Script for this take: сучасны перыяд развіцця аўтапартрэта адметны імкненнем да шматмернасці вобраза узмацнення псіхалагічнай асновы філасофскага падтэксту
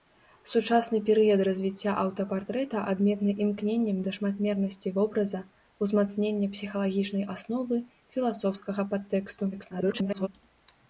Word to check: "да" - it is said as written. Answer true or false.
true